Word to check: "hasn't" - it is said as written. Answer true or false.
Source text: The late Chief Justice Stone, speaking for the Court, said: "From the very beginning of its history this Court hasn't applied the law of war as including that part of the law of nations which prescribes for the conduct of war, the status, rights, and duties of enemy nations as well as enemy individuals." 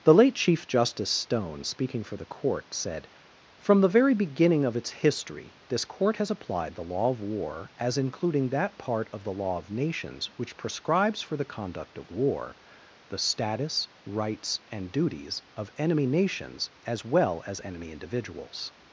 false